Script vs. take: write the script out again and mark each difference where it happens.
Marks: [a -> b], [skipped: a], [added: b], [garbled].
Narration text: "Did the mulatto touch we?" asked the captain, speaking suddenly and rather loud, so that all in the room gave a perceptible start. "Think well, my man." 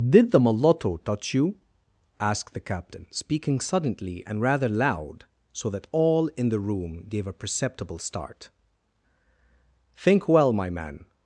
"Did the mulatto touch [we?" -> you] asked the captain, speaking suddenly and rather loud, so that all in the room gave a perceptible start. "Think well, my man."